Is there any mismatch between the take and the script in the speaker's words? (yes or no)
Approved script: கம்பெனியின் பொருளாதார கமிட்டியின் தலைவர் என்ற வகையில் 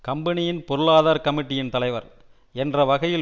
no